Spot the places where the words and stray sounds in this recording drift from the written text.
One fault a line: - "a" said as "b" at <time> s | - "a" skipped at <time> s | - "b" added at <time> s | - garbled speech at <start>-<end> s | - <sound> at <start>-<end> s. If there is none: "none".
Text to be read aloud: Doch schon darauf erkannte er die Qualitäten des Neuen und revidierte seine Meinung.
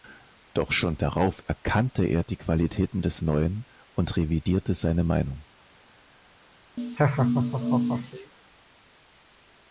- laugh at 6.8-8.3 s